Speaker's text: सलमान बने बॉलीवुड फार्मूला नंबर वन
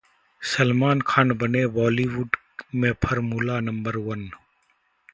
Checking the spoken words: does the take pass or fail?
fail